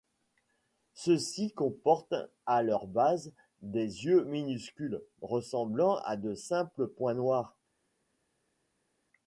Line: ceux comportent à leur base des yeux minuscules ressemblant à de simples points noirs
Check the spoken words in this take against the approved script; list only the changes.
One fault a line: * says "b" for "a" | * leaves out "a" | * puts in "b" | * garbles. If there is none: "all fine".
* puts in "ci"